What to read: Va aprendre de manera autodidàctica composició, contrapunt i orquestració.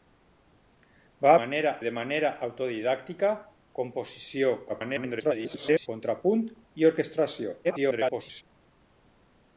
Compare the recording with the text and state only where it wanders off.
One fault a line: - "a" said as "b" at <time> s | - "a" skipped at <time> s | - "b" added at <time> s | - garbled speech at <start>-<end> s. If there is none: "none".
- "aprendre" said as "manera" at 1.4 s
- garbled speech at 4.7-5.9 s
- garbled speech at 7.6-8.4 s